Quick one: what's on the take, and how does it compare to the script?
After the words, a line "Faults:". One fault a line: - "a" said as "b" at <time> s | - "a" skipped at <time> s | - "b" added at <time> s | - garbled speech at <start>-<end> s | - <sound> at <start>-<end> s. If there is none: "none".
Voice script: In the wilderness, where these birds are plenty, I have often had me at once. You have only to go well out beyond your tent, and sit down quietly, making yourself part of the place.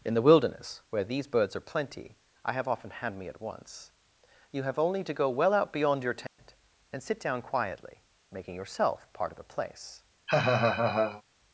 In the wilderness, where these birds are plenty, I have often had me at once. You have only to go well out beyond your tent, and sit down quietly, making yourself part of the place.
Faults:
- dropout at 6.3-6.4 s
- laugh at 10.3-11.2 s